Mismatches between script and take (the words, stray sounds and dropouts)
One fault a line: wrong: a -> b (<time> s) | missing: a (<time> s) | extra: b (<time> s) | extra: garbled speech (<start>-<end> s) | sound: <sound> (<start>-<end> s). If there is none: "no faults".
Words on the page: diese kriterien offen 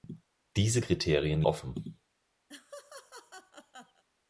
sound: laugh (2.5-4.0 s)